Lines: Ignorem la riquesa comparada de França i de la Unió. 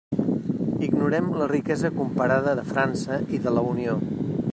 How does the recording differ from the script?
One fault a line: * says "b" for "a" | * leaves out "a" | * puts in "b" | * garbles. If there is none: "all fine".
all fine